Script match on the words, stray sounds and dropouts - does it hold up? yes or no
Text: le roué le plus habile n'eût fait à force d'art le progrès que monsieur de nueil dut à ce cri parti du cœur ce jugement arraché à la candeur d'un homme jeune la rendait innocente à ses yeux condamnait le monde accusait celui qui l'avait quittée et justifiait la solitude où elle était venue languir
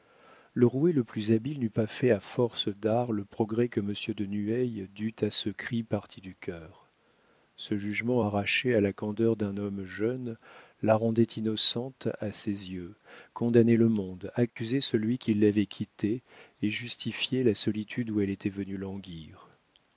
no